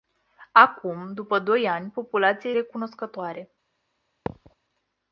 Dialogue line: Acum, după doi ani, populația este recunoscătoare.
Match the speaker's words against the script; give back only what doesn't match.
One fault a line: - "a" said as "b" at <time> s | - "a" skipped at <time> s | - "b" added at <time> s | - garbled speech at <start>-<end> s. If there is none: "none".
- "este" skipped at 2.5 s